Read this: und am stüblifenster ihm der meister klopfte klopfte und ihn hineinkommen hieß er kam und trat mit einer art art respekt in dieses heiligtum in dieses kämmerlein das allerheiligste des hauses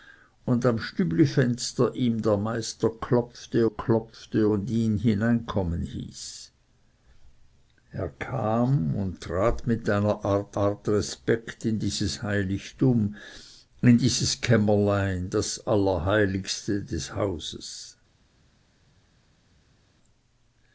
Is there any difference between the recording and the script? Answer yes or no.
no